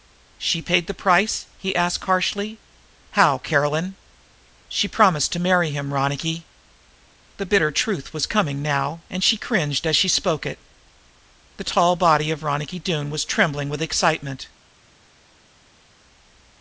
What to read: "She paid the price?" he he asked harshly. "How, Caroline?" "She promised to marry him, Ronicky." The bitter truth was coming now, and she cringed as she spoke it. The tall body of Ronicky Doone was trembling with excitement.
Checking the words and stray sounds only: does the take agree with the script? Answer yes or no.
no